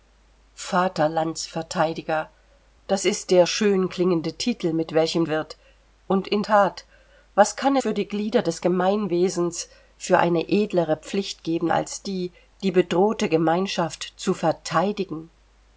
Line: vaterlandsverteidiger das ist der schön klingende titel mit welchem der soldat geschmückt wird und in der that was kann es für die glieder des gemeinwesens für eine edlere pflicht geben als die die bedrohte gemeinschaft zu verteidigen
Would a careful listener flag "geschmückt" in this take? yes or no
yes